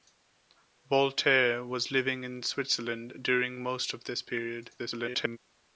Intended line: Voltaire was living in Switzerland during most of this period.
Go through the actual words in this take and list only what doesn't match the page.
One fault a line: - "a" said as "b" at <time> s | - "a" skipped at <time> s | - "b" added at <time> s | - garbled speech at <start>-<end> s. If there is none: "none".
- garbled speech at 4.8-5.4 s